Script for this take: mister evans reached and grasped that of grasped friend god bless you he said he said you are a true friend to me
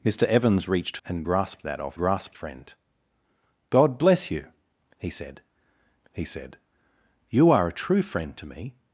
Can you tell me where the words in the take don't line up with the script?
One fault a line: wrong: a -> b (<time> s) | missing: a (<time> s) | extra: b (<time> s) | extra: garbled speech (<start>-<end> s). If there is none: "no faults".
no faults